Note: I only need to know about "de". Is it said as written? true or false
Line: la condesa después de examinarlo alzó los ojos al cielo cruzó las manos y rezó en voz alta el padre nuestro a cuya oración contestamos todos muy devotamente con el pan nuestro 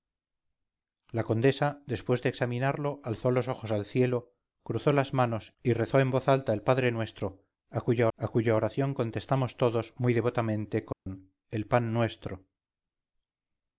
true